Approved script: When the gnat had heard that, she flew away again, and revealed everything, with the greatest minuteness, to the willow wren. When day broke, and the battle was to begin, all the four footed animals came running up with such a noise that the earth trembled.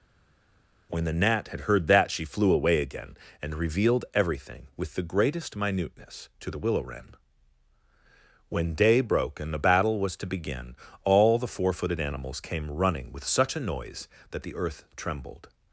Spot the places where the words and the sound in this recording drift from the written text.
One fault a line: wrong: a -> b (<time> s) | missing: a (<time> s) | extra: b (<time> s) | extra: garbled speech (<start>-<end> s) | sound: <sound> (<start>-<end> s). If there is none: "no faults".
missing: up (13.1 s)